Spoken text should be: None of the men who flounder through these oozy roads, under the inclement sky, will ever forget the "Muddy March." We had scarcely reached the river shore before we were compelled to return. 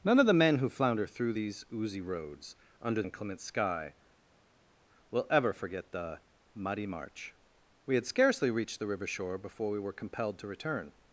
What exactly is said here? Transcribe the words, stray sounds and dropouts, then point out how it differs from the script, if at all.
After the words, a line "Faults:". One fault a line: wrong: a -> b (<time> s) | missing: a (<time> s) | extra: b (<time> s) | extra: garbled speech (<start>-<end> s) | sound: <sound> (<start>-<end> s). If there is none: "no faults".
None of the men who flounder through these oozy roads, under inclement sky, will ever forget the "Muddy March." We had scarcely reached the river shore before we were compelled to return.
Faults:
missing: the (3.0 s)